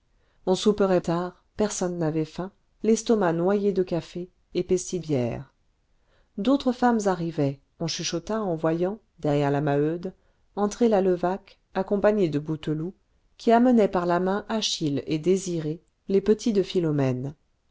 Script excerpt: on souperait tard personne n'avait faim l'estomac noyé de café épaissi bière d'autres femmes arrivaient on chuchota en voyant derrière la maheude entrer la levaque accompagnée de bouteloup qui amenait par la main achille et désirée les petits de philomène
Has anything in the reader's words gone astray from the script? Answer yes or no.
no